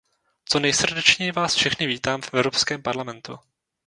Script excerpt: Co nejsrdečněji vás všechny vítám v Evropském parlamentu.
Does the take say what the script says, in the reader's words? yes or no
yes